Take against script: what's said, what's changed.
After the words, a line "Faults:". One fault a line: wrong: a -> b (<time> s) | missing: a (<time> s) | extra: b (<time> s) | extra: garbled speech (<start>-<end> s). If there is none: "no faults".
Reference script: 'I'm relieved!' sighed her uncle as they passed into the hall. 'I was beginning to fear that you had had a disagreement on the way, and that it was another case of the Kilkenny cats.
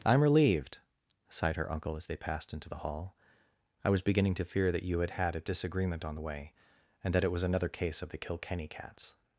'I'm relieved!' sighed her uncle as they passed into the hall. 'I was beginning to fear that you had had a disagreement on the way, and that it was another case of the Kilkenny cats.
Faults:
no faults